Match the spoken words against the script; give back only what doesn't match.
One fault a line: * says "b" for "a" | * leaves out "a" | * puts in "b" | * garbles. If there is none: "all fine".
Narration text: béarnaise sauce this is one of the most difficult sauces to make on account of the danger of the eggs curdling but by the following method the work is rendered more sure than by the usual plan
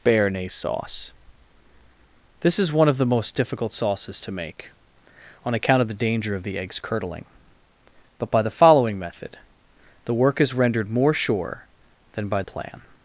* leaves out "the usual"